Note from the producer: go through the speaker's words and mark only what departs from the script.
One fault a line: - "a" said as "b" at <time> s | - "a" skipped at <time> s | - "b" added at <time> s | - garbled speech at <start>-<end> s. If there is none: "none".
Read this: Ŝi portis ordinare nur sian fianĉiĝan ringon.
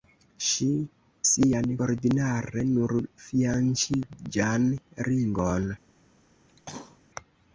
- "portis" said as "sian" at 1.3 s
- "sian" skipped at 2.9 s